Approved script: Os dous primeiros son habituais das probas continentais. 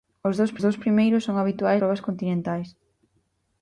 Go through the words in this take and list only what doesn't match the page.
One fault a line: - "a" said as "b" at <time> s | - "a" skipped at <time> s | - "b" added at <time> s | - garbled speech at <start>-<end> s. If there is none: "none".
- "dous" added at 0.6 s
- "das" skipped at 1.8 s